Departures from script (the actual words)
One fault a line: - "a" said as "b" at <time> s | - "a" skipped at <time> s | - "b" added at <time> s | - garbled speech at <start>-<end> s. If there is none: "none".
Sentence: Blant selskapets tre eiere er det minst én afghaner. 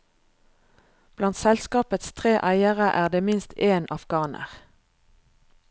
none